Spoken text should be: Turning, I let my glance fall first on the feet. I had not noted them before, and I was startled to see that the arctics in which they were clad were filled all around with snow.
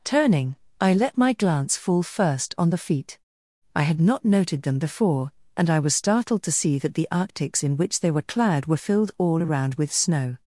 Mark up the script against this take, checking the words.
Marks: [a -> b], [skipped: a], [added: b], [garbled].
Turning, I let my glance fall first on the feet. I had not noted them before, and I was startled to see that the arctics in which they were clad were filled all around with snow.